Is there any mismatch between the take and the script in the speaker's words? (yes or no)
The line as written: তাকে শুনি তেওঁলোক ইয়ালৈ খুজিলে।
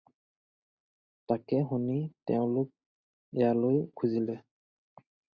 no